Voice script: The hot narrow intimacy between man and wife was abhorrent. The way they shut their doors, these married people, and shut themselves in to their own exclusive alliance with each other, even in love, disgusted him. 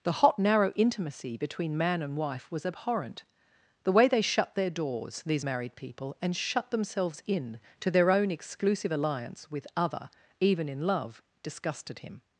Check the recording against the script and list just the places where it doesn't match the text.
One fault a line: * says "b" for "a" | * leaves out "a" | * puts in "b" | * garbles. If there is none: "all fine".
* leaves out "each"